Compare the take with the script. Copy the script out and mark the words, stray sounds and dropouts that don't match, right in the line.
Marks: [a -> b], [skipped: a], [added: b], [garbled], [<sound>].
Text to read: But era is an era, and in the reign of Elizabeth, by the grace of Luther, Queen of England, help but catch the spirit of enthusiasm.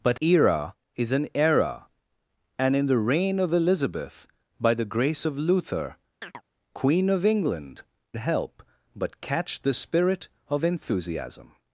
But era is an era, and in the reign of Elizabeth, by the grace of Luther, [chirp] Queen of England, help but catch the spirit of enthusiasm.